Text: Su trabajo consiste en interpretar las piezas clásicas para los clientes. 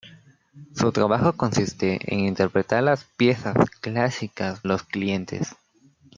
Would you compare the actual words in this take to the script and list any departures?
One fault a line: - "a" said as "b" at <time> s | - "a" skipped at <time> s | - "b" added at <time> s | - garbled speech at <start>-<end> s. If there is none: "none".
- "para" skipped at 4.6 s